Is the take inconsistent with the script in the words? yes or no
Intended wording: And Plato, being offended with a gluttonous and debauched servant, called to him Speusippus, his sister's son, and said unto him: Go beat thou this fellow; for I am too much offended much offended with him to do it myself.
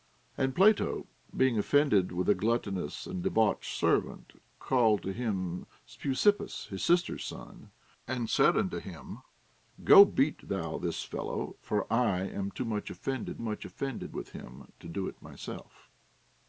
no